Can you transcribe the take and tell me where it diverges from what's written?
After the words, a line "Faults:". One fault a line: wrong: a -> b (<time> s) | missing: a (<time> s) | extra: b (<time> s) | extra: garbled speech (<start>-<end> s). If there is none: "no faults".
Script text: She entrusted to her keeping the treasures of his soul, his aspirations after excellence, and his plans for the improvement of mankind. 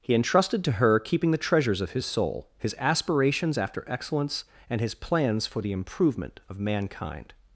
He entrusted to her keeping the treasures of his soul, his aspirations after excellence, and his plans for the improvement of mankind.
Faults:
wrong: She -> He (0.0 s)